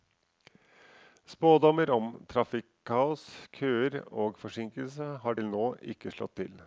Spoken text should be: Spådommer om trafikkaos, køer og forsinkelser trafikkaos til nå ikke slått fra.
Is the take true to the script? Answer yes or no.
no